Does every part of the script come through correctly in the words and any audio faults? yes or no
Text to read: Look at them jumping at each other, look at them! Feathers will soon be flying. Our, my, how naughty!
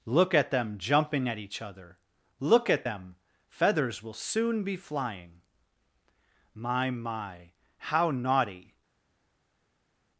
no